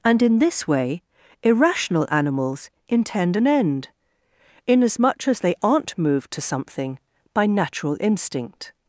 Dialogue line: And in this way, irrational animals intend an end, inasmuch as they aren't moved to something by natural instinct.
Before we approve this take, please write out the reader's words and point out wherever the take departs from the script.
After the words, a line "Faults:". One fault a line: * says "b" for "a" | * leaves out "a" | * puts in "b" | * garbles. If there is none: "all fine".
And in this way, irrational animals intend an end, inasmuch as they aren't moved to something by natural instinct.
Faults:
all fine